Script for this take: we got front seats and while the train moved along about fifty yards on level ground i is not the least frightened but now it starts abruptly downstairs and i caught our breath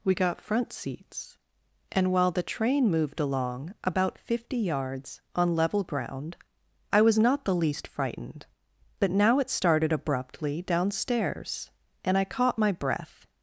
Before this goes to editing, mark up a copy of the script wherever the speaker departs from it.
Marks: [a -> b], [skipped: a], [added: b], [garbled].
we got front seats and while the train moved along about fifty yards on level ground i [is -> was] not the least frightened but now it [starts -> started] abruptly downstairs and i caught [our -> my] breath